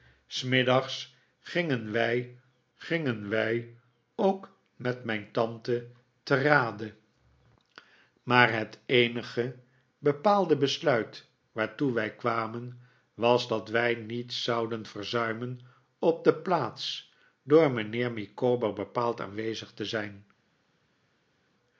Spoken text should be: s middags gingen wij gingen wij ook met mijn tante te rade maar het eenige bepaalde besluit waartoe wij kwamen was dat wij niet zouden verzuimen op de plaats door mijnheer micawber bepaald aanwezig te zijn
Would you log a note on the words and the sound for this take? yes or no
no